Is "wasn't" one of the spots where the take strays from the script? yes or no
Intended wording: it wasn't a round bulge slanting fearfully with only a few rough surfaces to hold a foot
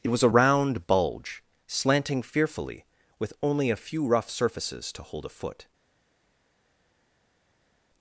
yes